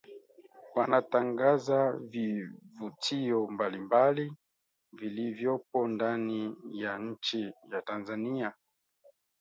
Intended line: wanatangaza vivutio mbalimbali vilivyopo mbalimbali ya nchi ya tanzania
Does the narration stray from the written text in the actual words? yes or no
yes